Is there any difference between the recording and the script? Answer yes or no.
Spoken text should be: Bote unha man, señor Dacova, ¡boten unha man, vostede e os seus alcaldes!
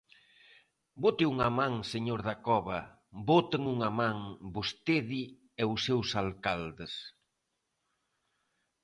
no